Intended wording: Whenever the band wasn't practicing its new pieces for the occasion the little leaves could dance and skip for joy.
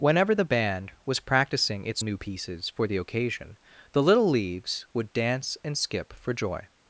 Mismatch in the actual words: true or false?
true